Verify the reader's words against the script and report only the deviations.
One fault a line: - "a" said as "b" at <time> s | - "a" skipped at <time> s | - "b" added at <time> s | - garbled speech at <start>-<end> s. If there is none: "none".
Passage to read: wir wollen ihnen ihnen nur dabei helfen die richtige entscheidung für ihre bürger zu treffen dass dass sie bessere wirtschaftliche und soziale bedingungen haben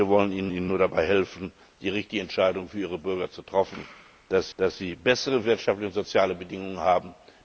none